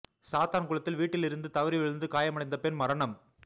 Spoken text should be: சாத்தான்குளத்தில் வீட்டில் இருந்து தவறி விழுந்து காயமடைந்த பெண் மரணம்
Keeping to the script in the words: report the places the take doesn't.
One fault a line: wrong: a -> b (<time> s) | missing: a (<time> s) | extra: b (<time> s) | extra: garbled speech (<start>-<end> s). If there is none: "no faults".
no faults